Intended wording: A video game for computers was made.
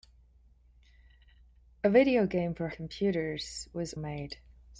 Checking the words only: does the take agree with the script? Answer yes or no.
yes